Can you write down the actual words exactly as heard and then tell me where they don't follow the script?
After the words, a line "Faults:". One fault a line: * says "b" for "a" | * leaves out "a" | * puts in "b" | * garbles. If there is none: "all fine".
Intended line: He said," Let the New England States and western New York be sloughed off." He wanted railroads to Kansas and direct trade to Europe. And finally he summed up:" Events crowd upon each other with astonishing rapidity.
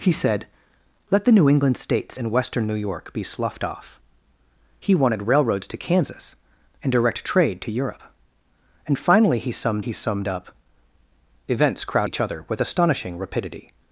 He said," Let the New England States and western New York be sloughed off." He wanted railroads to Kansas and direct trade to Europe. And finally he summed he summed up:" Events crowd each other with astonishing rapidity.
Faults:
* puts in "he summed"
* leaves out "upon"